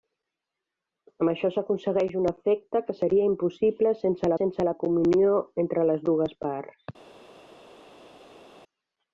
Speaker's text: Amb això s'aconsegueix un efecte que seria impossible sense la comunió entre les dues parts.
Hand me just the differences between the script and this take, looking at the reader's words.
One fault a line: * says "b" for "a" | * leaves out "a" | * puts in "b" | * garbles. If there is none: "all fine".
* puts in "sense"